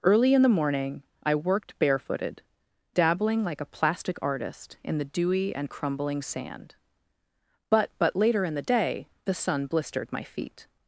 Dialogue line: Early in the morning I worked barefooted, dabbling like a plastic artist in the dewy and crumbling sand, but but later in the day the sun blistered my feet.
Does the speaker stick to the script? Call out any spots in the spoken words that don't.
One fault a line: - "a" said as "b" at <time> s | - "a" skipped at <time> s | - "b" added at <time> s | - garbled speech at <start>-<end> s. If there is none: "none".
none